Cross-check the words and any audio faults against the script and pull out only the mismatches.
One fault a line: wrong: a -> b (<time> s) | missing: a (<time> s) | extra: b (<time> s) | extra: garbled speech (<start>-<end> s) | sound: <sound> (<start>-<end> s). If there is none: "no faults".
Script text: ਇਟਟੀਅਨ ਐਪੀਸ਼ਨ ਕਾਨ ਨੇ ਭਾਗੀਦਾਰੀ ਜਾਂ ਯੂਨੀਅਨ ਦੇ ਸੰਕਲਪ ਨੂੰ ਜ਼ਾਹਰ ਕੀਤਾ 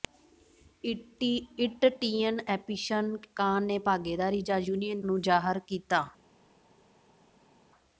missing: ਦੇ ਸੰਕਲਪ (5.0 s)